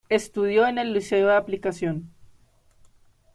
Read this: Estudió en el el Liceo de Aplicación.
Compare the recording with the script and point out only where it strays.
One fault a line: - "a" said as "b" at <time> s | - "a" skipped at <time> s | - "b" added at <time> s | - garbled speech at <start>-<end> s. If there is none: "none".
- "el" skipped at 0.9 s